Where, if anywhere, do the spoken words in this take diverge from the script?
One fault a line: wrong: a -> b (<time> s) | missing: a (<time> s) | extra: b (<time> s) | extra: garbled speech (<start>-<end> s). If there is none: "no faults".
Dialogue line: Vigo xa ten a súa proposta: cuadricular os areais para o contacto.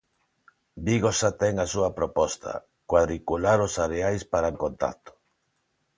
no faults